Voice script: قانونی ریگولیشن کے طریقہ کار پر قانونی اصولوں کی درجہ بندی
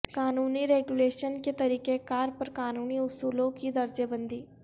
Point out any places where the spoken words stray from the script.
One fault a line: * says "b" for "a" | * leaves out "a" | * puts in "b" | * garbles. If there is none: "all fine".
all fine